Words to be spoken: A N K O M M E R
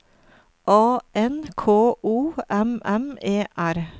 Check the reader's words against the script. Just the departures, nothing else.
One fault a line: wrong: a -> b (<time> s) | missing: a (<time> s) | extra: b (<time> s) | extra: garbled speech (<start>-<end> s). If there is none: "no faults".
no faults